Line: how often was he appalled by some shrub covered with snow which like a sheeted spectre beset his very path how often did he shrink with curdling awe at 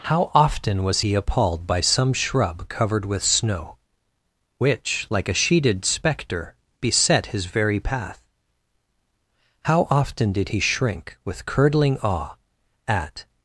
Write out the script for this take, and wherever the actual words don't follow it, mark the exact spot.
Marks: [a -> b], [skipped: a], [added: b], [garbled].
how often was he appalled by some shrub covered with snow which like a sheeted spectre beset his very path how often did he shrink with curdling awe at